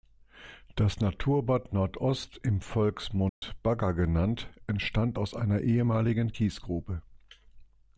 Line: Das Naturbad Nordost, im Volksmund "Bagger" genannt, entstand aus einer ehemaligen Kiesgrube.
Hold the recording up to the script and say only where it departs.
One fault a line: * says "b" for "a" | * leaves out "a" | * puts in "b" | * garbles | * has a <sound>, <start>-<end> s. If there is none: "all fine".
* has a dropout, 3.3-3.4 s